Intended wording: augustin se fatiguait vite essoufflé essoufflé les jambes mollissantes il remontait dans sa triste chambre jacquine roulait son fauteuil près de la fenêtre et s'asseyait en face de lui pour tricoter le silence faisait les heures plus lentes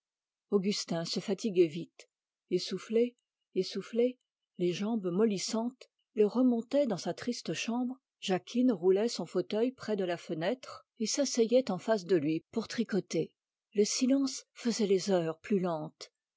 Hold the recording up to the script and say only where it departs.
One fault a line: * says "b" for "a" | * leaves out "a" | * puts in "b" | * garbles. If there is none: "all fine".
all fine